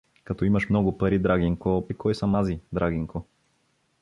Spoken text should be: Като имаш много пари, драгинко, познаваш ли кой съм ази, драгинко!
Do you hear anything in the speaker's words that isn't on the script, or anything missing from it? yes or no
yes